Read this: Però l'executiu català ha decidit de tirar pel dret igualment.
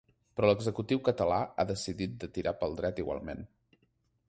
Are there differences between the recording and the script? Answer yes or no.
no